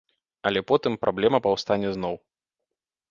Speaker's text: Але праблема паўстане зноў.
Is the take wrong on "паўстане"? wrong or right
right